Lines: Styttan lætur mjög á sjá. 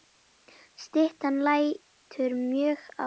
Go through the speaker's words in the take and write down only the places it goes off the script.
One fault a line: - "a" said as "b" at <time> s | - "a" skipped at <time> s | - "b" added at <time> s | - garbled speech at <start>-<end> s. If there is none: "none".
none